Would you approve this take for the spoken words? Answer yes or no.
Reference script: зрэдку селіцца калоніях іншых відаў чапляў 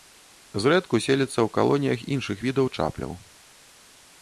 no